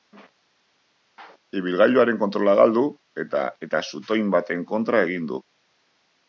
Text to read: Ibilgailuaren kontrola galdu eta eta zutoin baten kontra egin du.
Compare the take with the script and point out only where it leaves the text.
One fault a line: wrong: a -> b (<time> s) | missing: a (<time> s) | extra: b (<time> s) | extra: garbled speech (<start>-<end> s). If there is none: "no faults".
no faults